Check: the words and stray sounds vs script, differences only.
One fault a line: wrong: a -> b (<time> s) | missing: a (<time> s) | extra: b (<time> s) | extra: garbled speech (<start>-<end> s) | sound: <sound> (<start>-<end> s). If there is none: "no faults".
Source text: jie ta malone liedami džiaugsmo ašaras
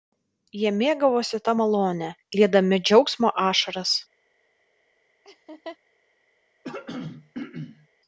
extra: mėgavosi (0.8 s)
sound: laugh (5.2-5.8 s)
sound: throat clearing (6.6-7.9 s)